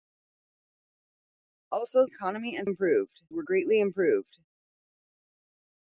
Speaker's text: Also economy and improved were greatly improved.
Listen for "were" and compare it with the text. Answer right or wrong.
right